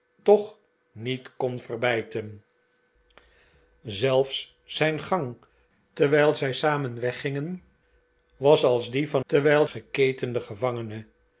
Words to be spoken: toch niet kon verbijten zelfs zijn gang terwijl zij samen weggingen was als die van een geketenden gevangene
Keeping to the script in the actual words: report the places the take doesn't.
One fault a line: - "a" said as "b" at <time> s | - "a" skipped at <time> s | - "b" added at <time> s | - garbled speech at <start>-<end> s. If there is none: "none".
- "een" said as "terwijl" at 9.3 s